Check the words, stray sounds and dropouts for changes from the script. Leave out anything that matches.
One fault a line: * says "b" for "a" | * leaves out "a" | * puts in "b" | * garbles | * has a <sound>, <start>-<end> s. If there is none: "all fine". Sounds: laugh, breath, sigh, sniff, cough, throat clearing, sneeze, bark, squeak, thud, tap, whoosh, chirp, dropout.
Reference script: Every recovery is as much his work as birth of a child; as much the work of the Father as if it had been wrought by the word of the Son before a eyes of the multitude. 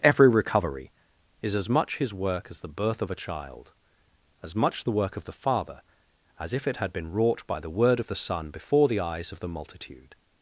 * puts in "the"
* says "the" for "a"